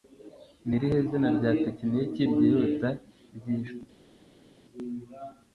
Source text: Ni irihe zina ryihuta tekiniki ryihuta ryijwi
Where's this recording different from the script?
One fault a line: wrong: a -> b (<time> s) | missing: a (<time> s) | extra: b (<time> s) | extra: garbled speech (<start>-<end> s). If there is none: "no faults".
wrong: ryihuta -> rya (1.4 s)